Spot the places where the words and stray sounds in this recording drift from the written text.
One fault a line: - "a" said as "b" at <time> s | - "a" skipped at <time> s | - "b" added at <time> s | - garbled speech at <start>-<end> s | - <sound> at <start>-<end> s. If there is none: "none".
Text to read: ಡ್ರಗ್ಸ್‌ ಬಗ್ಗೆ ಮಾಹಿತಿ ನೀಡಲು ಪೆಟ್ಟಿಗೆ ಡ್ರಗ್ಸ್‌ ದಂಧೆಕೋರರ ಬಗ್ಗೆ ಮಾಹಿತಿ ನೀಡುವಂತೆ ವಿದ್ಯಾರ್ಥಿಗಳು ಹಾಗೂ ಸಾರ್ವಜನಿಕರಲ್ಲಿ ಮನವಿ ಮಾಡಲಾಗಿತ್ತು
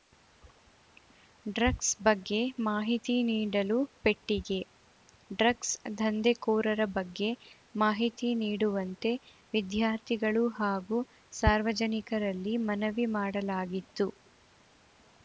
none